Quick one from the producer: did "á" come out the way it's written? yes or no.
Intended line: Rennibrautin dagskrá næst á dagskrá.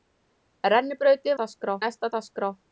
yes